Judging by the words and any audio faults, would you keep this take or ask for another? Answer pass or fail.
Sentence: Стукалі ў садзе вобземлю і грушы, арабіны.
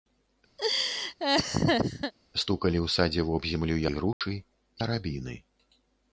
fail